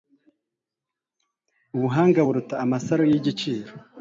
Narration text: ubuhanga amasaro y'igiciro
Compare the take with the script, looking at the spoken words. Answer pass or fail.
fail